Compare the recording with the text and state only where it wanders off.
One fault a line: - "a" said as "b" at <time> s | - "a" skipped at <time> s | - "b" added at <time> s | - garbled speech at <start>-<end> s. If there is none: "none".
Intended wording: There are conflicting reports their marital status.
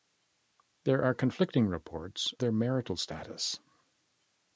none